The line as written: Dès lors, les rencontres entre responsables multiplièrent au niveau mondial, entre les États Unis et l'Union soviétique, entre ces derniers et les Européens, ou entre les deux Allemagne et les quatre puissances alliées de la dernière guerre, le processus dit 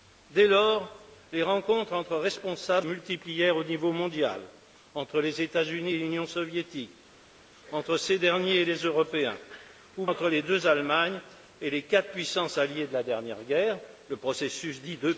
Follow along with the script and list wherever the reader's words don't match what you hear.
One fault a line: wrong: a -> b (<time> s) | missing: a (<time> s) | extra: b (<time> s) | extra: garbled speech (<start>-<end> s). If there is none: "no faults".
no faults